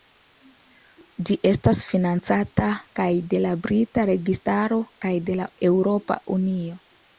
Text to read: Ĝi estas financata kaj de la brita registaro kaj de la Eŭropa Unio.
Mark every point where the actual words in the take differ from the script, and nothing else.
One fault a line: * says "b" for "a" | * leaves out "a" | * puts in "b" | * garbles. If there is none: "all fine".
all fine